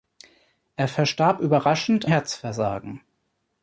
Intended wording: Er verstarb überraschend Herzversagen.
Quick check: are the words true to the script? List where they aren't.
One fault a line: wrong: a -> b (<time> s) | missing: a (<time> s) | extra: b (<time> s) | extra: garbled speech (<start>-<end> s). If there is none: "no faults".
no faults